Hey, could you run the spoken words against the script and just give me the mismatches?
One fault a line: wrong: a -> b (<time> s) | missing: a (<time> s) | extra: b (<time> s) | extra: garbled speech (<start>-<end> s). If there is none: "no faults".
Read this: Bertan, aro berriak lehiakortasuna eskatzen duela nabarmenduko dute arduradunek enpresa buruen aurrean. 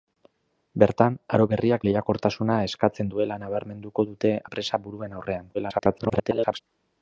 missing: arduradunek (4.3 s)
extra: garbled speech (5.5-6.6 s)